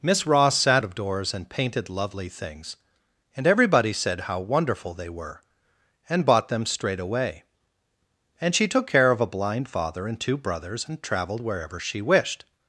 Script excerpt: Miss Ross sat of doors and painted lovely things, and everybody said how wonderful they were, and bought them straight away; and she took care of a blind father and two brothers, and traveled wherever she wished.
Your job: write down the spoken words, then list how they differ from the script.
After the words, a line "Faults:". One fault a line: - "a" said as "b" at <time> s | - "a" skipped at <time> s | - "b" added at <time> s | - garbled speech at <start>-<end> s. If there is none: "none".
Miss Ross sat of doors and painted lovely things, and everybody said how wonderful they were, and bought them straight away; and she took care of a blind father and two brothers, and traveled wherever she wished.
Faults:
none